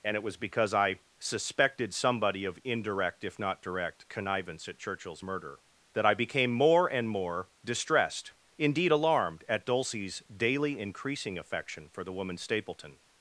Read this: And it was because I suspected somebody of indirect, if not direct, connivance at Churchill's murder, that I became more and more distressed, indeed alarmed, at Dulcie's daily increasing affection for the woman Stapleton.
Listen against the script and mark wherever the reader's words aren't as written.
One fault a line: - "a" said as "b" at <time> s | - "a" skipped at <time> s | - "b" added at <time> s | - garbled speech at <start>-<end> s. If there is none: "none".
none